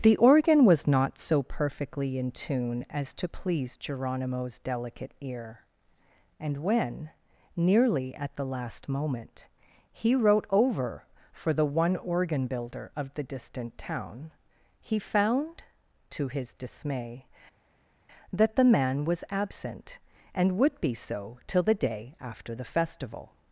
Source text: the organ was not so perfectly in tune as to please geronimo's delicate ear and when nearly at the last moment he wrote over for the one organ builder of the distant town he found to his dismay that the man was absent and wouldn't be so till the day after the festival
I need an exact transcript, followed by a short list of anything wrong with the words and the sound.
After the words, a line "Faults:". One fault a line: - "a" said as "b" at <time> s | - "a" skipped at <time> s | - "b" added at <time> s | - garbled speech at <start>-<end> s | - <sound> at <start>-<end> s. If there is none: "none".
the organ was not so perfectly in tune as to please geronimo's delicate ear and when nearly at the last moment he wrote over for the one organ builder of the distant town he found to his dismay that the man was absent and would be so till the day after the festival
Faults:
- "wouldn't" said as "would" at 20.6 s